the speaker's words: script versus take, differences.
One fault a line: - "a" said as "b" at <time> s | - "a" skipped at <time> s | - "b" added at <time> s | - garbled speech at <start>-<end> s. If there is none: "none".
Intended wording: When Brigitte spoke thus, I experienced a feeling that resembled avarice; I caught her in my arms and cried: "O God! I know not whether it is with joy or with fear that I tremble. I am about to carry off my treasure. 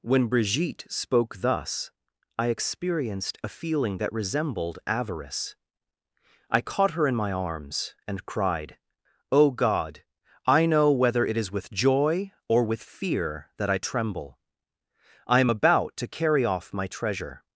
- "not" skipped at 10.9 s